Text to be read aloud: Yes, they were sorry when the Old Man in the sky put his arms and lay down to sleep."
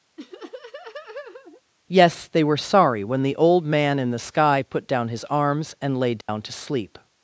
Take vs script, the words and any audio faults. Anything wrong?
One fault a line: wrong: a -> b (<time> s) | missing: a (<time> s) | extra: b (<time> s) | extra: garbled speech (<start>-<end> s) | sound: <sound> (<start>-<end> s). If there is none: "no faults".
sound: laugh (0.2-1.6 s)
extra: down (4.9 s)
sound: dropout (6.2-6.3 s)